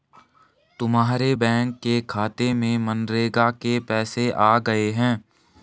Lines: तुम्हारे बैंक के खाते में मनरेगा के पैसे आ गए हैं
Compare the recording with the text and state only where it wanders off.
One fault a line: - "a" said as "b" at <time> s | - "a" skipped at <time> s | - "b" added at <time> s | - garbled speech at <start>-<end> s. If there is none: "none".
none